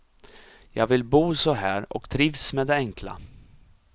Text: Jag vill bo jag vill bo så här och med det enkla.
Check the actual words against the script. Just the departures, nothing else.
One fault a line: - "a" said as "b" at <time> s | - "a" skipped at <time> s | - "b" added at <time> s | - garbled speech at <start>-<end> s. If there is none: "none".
- "jag vill bo" skipped at 1.4 s
- "trivs" added at 2.1 s